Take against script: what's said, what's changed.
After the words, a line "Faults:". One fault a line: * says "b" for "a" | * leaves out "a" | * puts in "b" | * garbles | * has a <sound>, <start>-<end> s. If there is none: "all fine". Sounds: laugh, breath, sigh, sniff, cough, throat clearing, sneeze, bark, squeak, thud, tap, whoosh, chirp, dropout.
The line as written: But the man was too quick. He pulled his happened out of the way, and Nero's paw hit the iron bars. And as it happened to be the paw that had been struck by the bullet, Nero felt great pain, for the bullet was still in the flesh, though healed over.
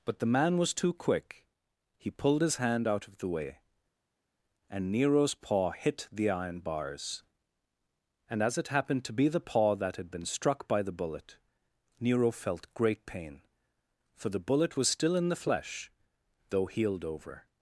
But the man was too quick. He pulled his hand out of the way, and Nero's paw hit the iron bars. And as it happened to be the paw that had been struck by the bullet, Nero felt great pain, for the bullet was still in the flesh, though healed over.
Faults:
* says "hand" for "happened"